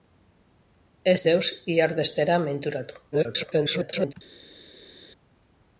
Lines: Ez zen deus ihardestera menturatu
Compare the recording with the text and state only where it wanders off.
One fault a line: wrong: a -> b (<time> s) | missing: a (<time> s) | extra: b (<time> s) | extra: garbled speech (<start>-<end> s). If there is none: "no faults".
missing: zen (1.2 s)
extra: garbled speech (3.1-4.1 s)